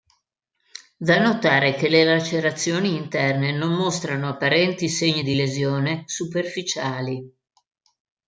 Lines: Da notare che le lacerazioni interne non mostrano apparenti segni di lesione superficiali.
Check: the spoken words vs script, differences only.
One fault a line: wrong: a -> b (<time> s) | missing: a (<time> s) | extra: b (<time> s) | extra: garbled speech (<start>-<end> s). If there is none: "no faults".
no faults